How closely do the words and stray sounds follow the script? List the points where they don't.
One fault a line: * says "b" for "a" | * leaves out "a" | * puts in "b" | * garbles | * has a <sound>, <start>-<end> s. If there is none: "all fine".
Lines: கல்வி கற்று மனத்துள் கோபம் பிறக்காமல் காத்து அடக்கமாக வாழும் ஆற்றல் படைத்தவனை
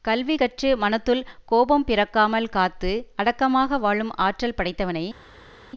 all fine